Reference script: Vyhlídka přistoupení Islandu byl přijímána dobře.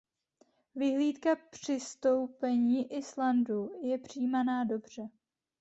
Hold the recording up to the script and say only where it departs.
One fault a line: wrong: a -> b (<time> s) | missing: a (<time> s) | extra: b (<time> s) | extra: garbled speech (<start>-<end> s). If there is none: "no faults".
wrong: byl -> je (3.8 s)